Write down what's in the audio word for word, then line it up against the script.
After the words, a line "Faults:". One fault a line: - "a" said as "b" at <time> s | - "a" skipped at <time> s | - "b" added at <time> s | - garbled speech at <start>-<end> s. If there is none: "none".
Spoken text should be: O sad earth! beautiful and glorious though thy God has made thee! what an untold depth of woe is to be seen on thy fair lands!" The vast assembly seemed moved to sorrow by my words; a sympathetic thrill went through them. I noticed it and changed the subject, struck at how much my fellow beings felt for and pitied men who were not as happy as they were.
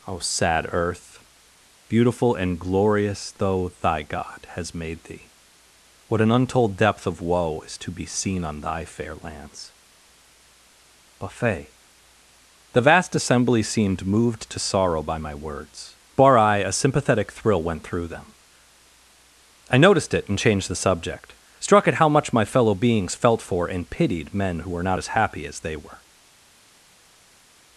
O sad earth! beautiful and glorious though thy God has made thee! what an untold depth of woe is to be seen on thy fair lands!" buffet The vast assembly seemed moved to sorrow by my words; bar I a sympathetic thrill went through them. I noticed it and changed the subject, struck at how much my fellow beings felt for and pitied men who were not as happy as they were.
Faults:
- "buffet" added at 11.2 s
- "bar I" added at 16.1 s